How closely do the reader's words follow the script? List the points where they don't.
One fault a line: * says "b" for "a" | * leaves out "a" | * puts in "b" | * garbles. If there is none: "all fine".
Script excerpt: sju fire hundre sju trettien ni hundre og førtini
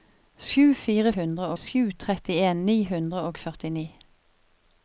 all fine